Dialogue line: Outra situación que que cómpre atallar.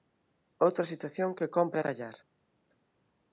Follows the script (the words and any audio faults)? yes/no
no